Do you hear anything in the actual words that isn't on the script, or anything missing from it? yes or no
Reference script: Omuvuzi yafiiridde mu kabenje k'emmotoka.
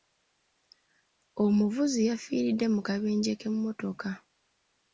no